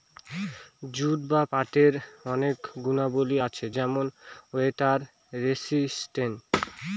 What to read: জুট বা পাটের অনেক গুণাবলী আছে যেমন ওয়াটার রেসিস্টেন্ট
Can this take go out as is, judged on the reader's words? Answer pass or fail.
pass